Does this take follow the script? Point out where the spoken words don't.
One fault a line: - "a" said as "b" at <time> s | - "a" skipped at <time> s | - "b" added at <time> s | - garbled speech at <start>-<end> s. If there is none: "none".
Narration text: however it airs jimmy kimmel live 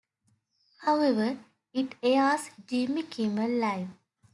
none